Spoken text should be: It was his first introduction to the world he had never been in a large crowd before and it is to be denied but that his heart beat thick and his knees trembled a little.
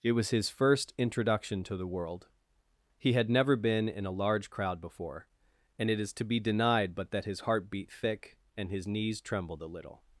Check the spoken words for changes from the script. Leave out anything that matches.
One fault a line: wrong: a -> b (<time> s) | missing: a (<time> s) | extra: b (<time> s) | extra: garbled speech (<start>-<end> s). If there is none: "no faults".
no faults